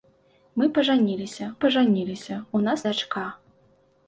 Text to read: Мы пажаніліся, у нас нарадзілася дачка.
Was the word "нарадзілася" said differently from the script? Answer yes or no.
yes